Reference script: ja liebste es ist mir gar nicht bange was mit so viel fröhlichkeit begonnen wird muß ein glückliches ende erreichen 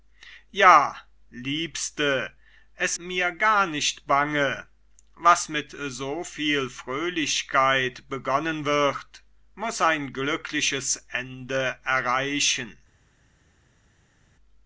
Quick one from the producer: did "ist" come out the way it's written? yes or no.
no